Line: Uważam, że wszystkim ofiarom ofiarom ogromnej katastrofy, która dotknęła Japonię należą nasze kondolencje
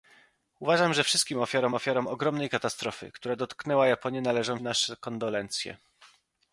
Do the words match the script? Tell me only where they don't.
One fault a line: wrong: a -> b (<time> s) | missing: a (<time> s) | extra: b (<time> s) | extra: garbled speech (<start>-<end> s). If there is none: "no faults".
no faults